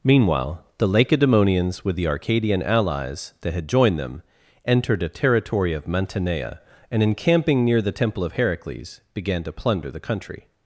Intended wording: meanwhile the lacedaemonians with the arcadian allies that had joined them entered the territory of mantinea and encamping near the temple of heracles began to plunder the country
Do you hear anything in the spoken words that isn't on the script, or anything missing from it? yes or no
yes